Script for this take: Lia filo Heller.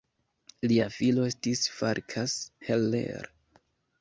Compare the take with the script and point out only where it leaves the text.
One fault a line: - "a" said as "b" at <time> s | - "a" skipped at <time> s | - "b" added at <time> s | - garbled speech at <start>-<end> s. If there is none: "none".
- "estis Farkas" added at 1.3 s